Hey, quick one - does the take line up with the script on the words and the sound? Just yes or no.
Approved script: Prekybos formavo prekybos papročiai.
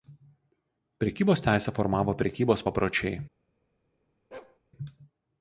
no